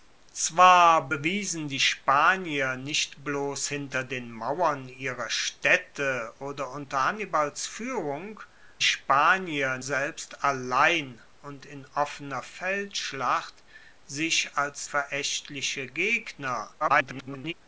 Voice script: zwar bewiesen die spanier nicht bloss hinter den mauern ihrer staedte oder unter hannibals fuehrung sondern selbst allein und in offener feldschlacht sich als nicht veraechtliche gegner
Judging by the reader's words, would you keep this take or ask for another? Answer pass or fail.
fail